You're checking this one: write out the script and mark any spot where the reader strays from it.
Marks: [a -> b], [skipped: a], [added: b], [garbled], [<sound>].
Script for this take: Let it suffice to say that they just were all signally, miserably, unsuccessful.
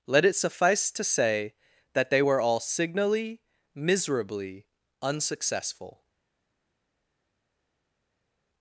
Let it suffice to say that they [skipped: just] were all signally, miserably, unsuccessful.